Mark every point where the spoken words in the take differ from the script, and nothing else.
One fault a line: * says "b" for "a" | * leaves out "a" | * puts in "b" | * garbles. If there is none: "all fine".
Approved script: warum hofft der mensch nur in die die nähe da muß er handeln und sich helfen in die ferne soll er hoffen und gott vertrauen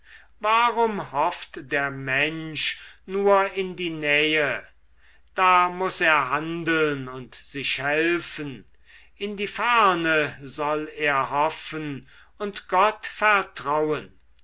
* leaves out "die"